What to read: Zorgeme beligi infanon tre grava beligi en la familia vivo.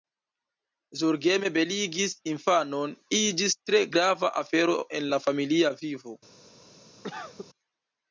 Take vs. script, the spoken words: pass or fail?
fail